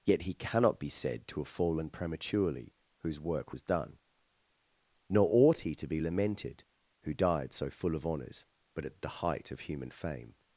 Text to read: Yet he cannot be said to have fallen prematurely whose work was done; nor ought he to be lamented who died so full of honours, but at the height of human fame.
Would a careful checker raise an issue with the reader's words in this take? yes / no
no